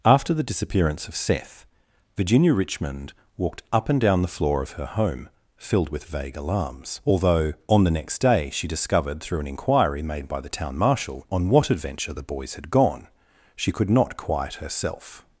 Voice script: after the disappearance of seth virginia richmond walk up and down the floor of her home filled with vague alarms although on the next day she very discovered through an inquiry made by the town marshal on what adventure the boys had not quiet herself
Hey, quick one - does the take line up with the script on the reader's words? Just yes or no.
no